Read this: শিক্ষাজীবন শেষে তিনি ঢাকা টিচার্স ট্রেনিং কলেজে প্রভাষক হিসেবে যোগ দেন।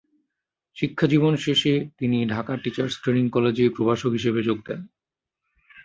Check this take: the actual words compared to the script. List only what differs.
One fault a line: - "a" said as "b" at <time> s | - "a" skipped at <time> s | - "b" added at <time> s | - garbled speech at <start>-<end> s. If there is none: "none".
none